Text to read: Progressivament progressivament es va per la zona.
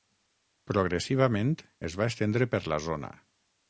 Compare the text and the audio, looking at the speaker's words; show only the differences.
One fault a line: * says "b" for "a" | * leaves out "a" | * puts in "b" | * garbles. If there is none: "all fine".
* leaves out "progressivament"
* puts in "estendre"